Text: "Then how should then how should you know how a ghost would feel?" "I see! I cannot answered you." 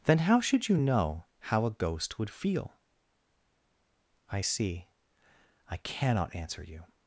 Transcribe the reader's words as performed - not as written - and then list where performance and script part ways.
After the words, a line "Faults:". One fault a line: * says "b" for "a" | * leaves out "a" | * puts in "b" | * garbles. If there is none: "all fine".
"Then how should you know how a ghost would feel?" "I see! I cannot answer you."
Faults:
* leaves out "then how should"
* says "answer" for "answered"